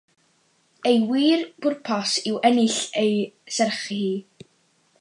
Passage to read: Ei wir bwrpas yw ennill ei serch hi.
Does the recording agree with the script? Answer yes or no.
yes